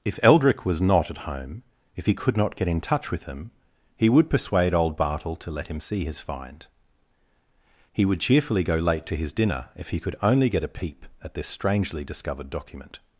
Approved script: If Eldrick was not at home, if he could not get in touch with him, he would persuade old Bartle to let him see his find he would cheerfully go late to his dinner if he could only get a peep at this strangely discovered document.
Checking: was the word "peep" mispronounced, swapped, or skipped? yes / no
no